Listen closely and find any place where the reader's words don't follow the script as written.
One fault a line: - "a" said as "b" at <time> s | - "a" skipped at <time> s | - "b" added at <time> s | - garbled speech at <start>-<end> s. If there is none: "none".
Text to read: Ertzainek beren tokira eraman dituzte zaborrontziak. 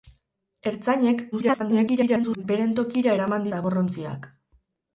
- garbled speech at 1.3-2.4 s
- "dituzte" skipped at 3.5 s